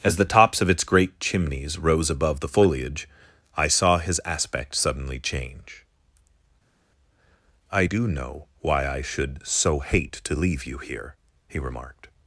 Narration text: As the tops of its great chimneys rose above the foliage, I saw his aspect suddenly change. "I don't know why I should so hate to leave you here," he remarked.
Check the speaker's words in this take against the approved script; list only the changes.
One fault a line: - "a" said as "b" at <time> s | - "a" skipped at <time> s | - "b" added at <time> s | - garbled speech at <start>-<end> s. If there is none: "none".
- "don't" said as "do" at 7.8 s